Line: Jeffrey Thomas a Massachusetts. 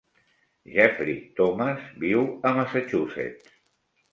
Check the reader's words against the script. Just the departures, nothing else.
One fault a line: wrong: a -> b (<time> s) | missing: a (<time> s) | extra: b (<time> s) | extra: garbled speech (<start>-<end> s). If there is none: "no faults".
extra: viu (2.0 s)